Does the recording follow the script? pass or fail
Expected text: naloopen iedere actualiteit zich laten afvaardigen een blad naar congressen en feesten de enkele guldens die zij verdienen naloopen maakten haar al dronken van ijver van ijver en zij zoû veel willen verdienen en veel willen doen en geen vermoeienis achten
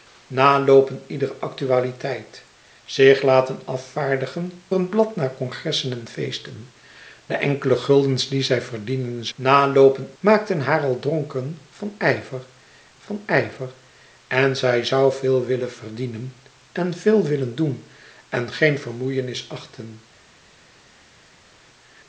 pass